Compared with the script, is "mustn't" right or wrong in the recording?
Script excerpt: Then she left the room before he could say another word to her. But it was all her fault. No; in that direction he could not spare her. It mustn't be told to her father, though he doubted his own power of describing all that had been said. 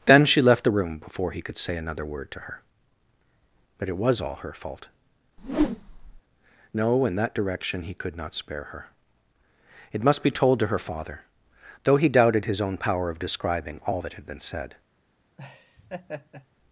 wrong